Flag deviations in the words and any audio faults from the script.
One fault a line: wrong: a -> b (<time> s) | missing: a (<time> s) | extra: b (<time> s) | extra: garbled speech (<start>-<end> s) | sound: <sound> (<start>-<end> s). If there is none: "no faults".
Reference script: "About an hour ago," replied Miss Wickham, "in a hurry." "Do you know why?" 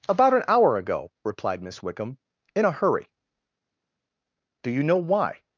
no faults